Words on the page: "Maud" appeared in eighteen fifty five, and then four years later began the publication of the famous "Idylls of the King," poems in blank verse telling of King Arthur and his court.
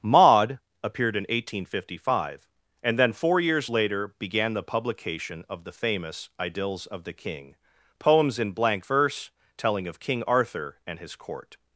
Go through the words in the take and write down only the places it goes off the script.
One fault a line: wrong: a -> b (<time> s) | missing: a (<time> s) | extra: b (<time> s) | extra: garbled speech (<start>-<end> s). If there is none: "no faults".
no faults